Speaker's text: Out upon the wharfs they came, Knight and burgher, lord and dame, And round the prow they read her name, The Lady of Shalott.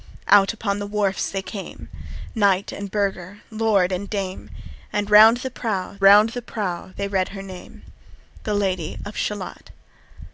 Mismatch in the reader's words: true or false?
true